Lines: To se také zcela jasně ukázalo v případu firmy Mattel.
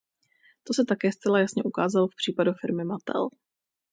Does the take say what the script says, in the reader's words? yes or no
yes